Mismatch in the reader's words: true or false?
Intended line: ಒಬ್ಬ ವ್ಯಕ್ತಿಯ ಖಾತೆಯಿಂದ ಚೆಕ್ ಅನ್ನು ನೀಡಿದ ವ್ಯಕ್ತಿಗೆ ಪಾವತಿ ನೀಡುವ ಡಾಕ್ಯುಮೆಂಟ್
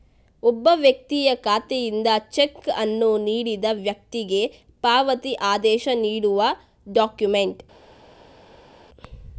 true